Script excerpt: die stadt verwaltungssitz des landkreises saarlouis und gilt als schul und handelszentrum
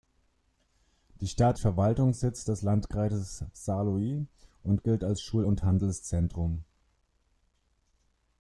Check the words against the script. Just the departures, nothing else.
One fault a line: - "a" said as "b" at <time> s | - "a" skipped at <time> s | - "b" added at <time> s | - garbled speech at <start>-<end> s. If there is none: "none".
none